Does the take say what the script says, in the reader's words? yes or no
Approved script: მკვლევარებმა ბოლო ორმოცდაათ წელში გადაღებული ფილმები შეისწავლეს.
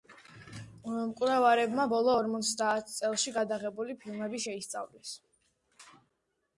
yes